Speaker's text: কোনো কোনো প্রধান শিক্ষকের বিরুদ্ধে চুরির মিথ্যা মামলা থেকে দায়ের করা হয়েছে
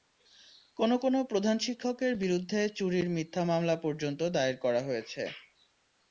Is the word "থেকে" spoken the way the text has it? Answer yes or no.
no